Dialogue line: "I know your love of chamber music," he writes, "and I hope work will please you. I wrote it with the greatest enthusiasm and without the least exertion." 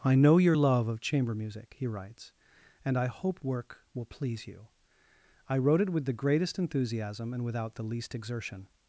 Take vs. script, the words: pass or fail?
pass